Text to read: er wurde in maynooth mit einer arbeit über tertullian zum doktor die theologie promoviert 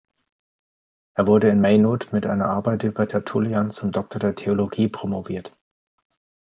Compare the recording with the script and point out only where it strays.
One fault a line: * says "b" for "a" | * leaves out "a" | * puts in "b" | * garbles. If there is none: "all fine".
* says "der" for "die"